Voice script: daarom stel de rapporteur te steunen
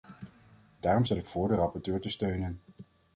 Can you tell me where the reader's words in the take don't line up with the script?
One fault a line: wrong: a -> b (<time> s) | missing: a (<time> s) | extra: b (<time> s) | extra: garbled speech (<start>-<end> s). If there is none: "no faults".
extra: ik voor (1.2 s)